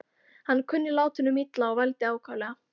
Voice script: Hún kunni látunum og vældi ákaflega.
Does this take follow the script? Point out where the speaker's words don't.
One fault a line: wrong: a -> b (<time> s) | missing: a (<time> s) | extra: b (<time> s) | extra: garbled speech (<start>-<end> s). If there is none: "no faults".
wrong: Hún -> Hann (0.5 s)
extra: illa (1.4 s)